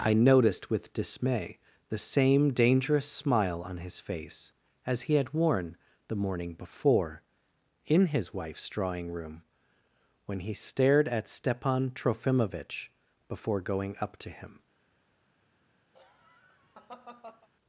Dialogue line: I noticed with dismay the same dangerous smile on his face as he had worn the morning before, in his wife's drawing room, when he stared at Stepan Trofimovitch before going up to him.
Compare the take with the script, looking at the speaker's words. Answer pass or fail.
pass